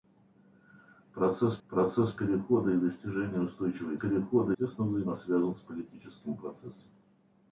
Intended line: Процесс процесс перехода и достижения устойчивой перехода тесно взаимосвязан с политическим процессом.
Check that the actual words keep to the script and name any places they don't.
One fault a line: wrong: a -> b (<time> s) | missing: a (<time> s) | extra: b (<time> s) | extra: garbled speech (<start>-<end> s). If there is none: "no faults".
no faults